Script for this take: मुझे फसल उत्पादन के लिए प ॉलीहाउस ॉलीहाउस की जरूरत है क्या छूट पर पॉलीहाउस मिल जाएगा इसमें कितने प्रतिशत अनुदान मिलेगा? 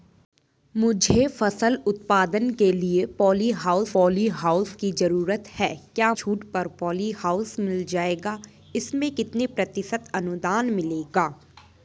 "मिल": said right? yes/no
yes